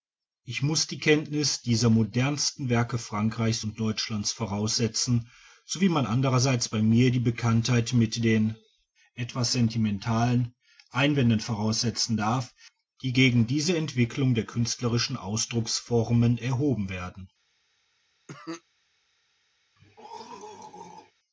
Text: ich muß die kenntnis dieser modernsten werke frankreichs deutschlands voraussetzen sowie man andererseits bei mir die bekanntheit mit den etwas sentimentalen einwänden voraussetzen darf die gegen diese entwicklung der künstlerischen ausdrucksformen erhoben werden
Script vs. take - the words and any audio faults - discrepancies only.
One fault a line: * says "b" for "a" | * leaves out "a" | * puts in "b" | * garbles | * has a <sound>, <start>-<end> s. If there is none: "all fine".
* puts in "und"
* has a cough, 18.3-18.6 s
* has a throat clearing, 19.8-21.1 s